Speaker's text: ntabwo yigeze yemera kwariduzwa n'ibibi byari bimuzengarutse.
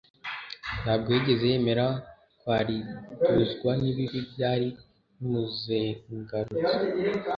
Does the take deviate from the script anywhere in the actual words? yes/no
no